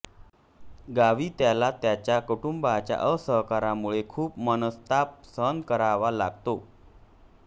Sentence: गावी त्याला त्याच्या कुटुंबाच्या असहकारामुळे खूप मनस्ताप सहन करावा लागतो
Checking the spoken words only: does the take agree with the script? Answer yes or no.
yes